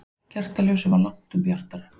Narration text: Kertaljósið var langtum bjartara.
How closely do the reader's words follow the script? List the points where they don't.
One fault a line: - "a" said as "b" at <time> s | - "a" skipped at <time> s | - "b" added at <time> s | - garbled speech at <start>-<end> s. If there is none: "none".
none